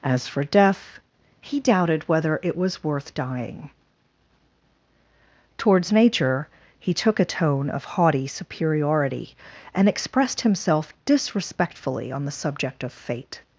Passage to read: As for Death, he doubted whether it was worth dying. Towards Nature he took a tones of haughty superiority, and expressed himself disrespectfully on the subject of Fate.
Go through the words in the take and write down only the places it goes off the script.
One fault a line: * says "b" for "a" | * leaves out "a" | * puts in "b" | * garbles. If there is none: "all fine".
* says "tone" for "tones"